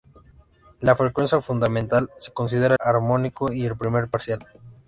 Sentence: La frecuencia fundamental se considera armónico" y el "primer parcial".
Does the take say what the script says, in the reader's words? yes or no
yes